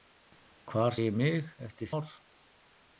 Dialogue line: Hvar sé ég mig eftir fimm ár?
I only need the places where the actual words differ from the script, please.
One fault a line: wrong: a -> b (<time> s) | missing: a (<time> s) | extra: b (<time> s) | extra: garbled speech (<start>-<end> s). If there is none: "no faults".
missing: sé (0.9 s)
missing: fimm (1.9 s)